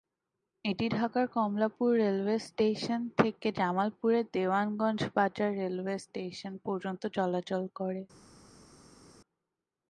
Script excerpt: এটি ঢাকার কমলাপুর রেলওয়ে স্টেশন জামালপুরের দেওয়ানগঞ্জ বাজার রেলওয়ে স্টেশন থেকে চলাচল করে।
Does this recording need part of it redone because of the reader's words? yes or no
yes